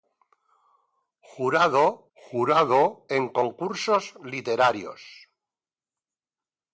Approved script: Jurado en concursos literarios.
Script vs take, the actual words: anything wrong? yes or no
yes